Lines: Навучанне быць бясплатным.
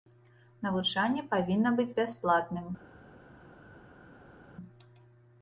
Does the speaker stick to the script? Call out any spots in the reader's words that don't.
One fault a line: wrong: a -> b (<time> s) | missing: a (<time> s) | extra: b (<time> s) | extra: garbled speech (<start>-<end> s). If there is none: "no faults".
extra: павінна (1.4 s)